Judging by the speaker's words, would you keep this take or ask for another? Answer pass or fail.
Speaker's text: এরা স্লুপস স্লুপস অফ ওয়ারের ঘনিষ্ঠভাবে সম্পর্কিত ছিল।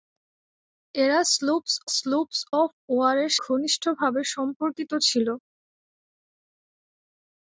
pass